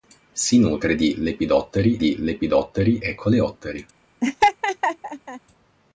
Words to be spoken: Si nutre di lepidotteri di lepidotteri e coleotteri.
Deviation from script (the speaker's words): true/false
false